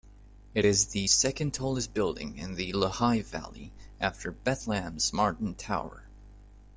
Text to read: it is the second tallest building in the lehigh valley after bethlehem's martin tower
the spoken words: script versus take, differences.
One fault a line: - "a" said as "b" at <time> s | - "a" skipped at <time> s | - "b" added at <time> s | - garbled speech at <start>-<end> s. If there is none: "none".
none